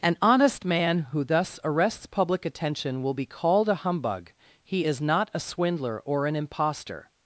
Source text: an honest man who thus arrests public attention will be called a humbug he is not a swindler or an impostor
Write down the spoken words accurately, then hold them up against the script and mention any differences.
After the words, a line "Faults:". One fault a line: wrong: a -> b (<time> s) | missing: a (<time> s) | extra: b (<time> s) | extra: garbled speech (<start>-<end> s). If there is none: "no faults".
an honest man who thus arrests public attention will be called a humbug he is not a swindler or an impostor
Faults:
no faults